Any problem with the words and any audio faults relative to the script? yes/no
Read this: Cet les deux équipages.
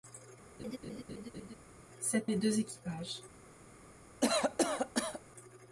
yes